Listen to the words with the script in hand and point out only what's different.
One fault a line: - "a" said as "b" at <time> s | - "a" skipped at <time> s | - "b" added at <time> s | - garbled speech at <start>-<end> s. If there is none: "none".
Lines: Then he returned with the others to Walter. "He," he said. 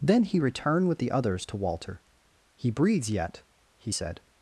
- "breathes yet" added at 2.7 s